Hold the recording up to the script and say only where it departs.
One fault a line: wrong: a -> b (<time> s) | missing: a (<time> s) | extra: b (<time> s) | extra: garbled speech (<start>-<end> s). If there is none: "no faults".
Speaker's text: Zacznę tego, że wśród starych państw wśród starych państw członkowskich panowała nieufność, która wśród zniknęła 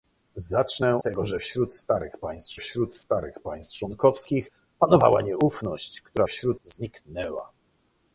no faults